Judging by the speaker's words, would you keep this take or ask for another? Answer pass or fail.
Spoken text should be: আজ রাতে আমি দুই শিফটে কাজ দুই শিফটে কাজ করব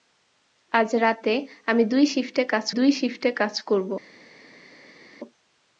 pass